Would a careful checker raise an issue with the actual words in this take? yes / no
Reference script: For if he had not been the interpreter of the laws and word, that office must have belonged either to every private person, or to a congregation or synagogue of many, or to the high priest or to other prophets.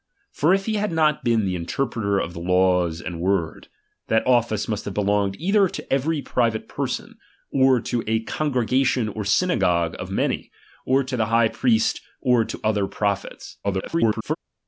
yes